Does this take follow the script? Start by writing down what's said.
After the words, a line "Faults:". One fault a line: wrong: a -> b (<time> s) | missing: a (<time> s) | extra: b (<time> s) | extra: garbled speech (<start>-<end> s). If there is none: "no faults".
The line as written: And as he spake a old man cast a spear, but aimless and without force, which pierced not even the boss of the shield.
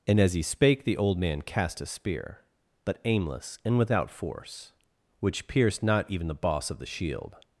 And as he spake the old man cast a spear, but aimless and without force, which pierced not even the boss of the shield.
Faults:
wrong: a -> the (0.8 s)